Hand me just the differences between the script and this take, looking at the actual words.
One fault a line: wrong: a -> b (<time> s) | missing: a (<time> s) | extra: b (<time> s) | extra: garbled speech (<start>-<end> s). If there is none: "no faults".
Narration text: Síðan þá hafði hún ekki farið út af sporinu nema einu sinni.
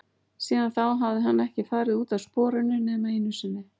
wrong: hún -> hann (1.3 s)